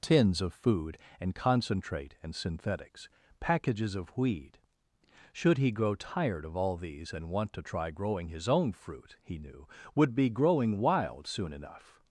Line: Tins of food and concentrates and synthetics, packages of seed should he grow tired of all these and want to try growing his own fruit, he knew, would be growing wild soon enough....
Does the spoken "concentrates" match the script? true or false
false